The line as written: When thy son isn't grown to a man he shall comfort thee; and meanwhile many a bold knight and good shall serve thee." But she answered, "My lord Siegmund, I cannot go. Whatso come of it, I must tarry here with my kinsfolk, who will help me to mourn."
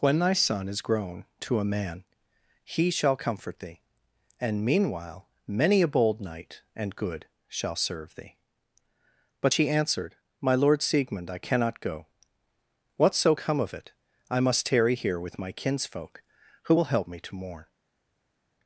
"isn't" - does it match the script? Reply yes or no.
no